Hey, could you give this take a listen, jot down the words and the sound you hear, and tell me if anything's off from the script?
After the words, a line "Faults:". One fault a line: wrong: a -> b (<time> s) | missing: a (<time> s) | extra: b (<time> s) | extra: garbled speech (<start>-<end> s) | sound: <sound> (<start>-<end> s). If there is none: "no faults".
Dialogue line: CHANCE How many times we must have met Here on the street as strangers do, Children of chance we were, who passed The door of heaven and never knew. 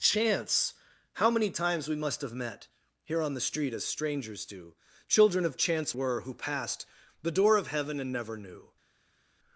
CHANCE How many times we must have met Here on the street as strangers do, Children of chance were, who passed The door of heaven and never knew.
Faults:
missing: we (6.0 s)